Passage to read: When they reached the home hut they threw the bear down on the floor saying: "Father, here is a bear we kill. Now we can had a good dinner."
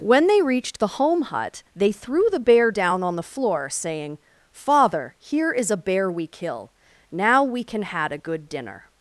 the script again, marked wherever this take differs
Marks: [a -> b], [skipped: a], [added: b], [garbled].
When they reached the home hut they threw the bear down on the floor saying: "Father, here is a bear we kill. Now we can had a good dinner."